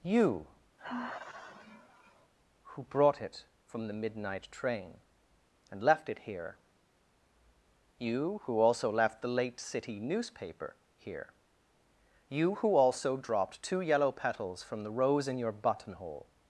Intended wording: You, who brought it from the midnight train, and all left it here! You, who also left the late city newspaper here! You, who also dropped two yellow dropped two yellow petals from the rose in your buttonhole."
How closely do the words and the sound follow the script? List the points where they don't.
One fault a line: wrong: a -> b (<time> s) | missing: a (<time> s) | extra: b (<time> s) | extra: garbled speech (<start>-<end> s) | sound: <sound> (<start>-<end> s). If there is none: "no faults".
sound: sigh (0.8-2.3 s)
missing: all (5.8 s)
missing: dropped two yellow (14.1 s)